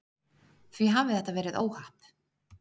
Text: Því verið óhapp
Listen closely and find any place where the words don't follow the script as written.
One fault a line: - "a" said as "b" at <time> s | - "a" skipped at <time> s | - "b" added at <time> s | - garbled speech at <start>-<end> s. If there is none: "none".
- "hafi þetta" added at 0.9 s